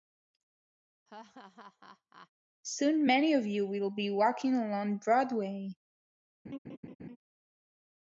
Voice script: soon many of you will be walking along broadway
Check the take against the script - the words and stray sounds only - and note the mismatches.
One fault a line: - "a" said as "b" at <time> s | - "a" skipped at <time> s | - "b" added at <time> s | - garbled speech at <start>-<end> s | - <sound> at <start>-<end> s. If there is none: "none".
- laugh at 1.1-2.3 s
- laugh at 6.5-7.2 s